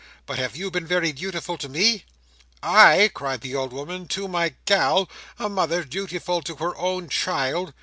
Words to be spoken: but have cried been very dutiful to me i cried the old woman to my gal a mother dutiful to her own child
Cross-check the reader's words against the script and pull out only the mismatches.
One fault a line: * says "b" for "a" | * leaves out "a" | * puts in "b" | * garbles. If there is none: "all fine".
* says "you" for "cried"